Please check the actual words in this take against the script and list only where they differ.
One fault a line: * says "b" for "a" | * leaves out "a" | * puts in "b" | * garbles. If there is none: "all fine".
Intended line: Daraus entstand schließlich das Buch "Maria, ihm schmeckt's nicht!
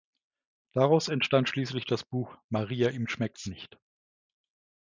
all fine